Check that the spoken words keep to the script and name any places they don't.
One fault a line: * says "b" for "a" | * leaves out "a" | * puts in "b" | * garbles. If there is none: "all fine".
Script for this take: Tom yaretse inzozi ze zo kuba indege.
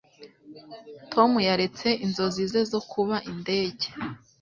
all fine